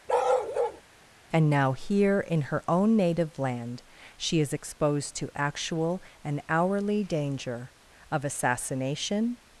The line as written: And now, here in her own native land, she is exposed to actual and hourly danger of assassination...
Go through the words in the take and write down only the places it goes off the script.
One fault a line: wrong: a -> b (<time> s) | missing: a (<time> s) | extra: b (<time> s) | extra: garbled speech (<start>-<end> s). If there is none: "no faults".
no faults